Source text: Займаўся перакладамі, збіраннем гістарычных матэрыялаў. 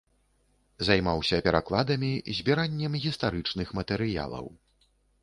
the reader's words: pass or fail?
pass